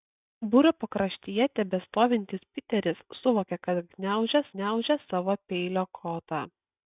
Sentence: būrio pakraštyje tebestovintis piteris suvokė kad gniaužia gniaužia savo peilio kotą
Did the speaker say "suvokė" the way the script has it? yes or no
yes